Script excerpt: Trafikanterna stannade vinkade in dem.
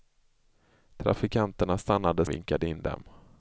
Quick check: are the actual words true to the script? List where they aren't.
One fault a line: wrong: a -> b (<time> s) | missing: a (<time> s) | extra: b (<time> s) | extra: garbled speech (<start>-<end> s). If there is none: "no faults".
no faults